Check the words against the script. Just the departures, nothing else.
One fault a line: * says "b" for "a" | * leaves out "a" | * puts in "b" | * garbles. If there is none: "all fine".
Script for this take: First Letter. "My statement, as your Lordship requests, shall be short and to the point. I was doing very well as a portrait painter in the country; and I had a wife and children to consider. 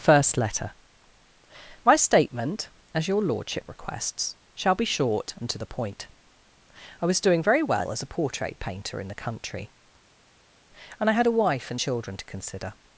all fine